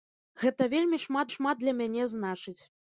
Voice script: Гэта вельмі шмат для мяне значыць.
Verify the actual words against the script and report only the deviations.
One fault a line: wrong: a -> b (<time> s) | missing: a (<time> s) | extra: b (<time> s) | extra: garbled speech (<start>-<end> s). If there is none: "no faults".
extra: шмат (1.3 s)